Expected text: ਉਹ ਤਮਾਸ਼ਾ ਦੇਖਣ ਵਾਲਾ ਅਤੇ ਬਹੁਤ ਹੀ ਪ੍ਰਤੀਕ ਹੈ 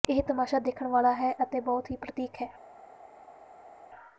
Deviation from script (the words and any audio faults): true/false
true